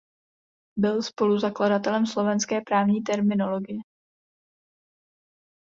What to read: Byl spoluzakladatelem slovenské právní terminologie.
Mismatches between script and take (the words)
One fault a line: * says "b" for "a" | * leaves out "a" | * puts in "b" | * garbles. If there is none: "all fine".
all fine